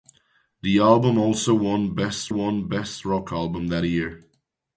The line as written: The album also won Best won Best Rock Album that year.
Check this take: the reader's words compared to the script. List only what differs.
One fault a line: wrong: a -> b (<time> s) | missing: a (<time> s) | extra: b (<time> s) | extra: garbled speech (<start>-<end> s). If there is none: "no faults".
no faults